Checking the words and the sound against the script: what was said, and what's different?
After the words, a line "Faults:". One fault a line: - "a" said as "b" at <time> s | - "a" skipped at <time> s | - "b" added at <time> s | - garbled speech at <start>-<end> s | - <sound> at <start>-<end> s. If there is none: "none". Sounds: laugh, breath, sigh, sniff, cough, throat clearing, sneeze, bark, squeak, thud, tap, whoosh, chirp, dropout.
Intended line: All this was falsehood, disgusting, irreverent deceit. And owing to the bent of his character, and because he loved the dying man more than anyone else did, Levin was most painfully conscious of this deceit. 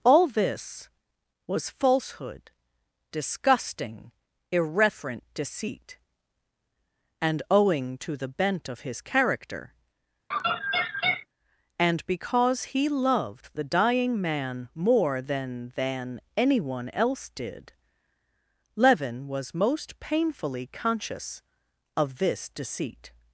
All this was falsehood, disgusting, irreverent deceit. And owing to the bent of his character, and because he loved the dying man more than than anyone else did, Levin was most painfully conscious of this deceit.
Faults:
- laugh at 10.3-11.3 s
- "than" added at 15.8 s